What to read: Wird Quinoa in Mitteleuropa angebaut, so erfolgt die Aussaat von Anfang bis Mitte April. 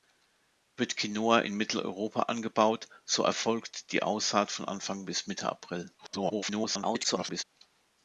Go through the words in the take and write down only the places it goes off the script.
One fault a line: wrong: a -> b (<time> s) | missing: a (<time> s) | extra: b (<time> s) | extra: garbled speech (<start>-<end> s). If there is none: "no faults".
extra: garbled speech (6.0-7.4 s)